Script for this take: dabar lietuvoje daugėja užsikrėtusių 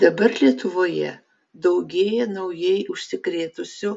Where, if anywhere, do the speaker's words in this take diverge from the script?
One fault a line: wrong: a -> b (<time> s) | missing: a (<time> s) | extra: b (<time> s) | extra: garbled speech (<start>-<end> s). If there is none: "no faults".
extra: naujai (2.3 s)